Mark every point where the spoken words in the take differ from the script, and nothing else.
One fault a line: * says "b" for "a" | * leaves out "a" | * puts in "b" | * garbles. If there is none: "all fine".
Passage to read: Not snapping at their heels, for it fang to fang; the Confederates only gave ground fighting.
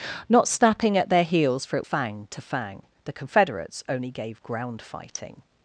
all fine